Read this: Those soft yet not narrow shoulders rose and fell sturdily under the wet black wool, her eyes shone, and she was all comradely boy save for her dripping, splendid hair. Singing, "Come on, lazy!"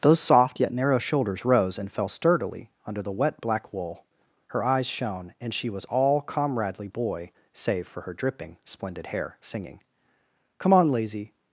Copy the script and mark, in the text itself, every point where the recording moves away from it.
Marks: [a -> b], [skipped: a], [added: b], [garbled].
Those soft yet [skipped: not] narrow shoulders rose and fell sturdily under the wet black wool, her eyes shone, and she was all comradely boy save for her dripping, splendid hair. Singing, "Come on, lazy!"